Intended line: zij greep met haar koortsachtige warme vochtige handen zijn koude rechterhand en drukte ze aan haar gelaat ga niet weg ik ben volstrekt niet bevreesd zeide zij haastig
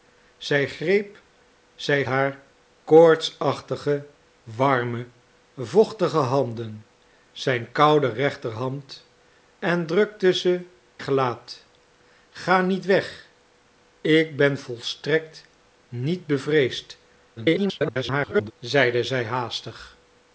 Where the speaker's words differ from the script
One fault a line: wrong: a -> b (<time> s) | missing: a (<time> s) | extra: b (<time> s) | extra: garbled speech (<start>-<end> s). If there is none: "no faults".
wrong: met -> zij (1.7 s)
missing: aan haar (10.6 s)
extra: garbled speech (17.4-18.5 s)